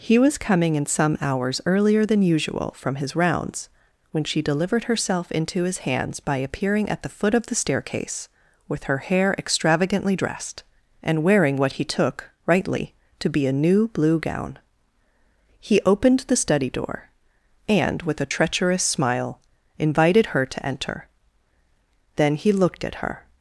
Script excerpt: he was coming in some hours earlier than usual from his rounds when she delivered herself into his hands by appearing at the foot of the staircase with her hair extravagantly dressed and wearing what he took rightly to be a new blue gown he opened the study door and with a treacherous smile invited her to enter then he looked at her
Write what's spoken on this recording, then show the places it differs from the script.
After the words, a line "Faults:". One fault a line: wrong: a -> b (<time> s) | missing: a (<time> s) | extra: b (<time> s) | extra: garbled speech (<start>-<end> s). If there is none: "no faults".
he was coming in some hours earlier than usual from his rounds when she delivered herself into his hands by appearing at the foot of the staircase with her hair extravagantly dressed and wearing what he took rightly to be a new blue gown he opened the study door and with a treacherous smile invited her to enter then he looked at her
Faults:
no faults